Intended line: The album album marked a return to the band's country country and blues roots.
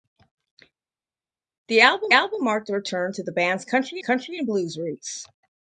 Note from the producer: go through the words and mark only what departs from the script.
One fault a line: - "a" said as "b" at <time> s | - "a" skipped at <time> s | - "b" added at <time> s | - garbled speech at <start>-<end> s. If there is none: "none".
none